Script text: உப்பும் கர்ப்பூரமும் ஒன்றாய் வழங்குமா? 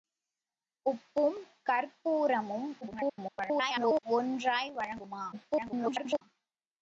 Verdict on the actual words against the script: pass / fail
fail